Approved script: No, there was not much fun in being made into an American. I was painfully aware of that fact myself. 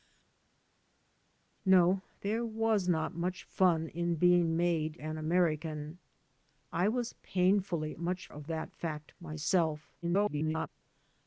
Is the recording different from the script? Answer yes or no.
yes